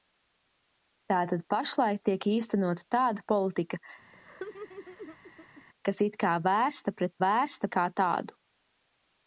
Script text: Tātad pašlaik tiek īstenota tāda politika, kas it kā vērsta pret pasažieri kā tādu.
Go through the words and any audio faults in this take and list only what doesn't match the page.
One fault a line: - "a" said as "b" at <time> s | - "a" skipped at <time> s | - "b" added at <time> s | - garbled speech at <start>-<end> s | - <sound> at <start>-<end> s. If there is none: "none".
- laugh at 4.1-5.6 s
- "pasažieri" said as "vērsta" at 7.2 s